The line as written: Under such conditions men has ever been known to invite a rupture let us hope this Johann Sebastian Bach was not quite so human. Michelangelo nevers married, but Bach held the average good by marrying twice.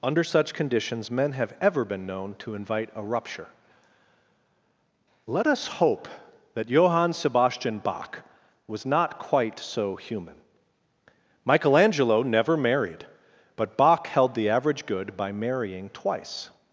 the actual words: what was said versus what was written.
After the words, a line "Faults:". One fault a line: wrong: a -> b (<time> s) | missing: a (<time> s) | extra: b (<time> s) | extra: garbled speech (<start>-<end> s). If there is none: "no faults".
Under such conditions men have ever been known to invite a rupture let us hope that Johann Sebastian Bach was not quite so human. Michelangelo never married, but Bach held the average good by marrying twice.
Faults:
wrong: has -> have (1.3 s)
wrong: this -> that (6.5 s)
wrong: nevers -> never (12.2 s)